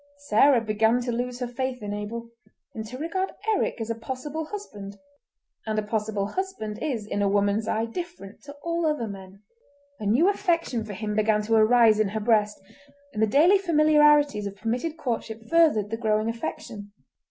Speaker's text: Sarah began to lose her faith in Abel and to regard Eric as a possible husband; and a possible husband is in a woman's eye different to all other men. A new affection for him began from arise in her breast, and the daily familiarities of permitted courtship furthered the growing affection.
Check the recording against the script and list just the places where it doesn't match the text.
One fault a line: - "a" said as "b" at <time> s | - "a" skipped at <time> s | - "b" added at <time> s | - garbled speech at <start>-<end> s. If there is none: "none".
- "from" said as "to" at 11.4 s